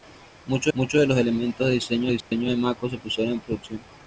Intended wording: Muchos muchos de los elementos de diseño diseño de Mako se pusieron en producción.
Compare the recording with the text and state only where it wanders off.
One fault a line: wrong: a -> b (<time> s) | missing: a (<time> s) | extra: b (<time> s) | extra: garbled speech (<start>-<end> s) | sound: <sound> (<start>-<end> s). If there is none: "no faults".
sound: dropout (2.2-2.3 s)